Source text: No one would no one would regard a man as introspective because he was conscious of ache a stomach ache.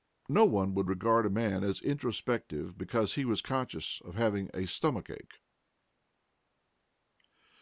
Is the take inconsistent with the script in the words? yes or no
yes